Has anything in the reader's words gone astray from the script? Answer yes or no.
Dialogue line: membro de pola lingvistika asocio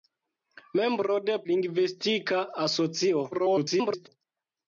yes